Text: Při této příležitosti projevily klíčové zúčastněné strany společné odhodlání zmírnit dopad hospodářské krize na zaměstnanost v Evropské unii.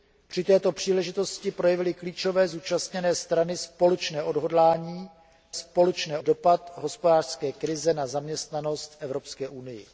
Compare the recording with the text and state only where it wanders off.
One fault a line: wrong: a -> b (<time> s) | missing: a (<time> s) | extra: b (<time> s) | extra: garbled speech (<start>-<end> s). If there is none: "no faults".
wrong: zmírnit -> společné (5.5 s)
missing: v (8.9 s)